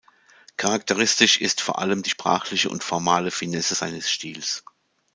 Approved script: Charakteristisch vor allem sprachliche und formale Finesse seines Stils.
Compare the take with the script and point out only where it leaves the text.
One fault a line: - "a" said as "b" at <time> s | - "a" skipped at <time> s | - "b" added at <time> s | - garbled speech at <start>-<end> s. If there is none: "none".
- "ist" added at 1.4 s
- "die" added at 2.0 s